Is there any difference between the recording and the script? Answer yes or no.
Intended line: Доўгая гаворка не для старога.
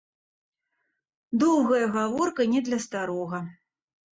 no